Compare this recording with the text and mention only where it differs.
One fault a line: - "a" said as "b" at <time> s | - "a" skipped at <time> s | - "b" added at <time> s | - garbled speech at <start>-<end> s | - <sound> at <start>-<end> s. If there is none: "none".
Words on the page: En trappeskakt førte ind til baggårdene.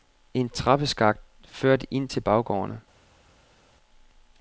none